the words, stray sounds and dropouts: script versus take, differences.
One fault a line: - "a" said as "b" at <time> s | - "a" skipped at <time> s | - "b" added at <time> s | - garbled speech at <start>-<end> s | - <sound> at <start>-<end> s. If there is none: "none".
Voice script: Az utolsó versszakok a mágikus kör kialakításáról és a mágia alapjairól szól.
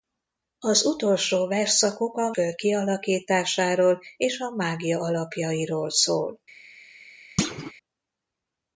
- "mágikus" skipped at 2.3 s
- thud at 7.4-7.7 s